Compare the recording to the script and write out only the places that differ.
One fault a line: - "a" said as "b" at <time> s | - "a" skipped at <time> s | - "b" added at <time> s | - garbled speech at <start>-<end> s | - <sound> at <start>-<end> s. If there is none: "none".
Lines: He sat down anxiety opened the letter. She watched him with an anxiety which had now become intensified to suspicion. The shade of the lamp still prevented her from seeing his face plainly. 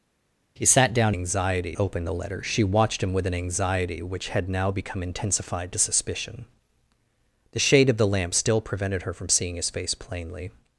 none